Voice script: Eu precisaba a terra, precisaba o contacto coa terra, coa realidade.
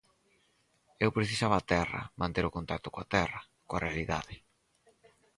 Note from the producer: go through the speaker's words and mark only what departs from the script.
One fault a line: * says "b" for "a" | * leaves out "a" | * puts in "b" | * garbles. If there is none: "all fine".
* says "manter" for "precisaba"